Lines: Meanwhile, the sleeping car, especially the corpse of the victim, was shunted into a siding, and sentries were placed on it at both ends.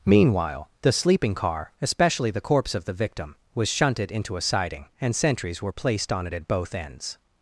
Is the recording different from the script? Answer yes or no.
no